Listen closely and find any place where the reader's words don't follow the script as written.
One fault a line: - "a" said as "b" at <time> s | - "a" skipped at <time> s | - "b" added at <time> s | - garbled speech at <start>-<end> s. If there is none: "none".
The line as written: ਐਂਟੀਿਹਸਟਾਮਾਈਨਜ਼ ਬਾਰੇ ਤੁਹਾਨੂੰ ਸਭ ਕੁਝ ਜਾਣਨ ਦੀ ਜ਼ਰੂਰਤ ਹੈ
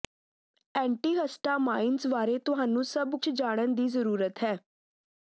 - "ਕੁਝ" skipped at 3.1 s